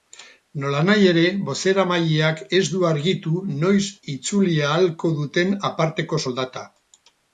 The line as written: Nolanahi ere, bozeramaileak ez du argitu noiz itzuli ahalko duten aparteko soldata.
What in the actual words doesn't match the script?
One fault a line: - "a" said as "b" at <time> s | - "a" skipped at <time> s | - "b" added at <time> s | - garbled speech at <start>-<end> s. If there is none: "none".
none